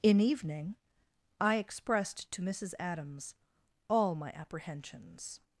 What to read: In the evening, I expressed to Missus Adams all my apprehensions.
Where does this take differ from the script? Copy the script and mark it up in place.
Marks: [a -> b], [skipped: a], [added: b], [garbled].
In [skipped: the] evening, I expressed to Missus Adams all my apprehensions.